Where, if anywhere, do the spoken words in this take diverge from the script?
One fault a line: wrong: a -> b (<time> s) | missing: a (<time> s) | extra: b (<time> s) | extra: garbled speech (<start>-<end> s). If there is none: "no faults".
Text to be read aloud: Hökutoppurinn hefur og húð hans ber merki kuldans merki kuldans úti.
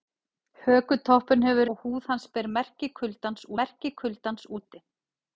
no faults